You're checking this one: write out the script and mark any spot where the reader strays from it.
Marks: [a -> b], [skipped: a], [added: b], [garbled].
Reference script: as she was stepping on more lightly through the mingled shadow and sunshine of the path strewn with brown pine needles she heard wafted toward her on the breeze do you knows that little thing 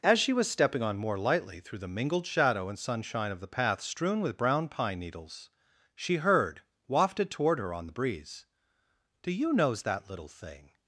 as she was stepping on more lightly through the mingled shadow and sunshine of the path strewn with brown pine needles she heard wafted toward her on the breeze do you knows that little thing